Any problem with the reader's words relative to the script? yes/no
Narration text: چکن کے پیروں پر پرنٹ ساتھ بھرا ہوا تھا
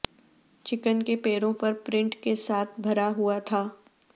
yes